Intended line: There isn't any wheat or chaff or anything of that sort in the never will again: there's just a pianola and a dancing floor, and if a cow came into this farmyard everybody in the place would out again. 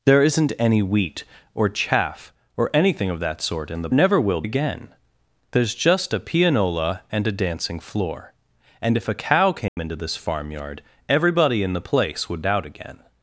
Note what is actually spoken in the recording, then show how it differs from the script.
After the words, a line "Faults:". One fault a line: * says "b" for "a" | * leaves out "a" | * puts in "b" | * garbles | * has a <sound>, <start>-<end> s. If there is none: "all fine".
There isn't any wheat or chaff or anything of that sort in the never will again: there's just a pianola and a dancing floor, and if a cow came into this farmyard everybody in the place would out again.
Faults:
* has a dropout, 9.7-9.8 s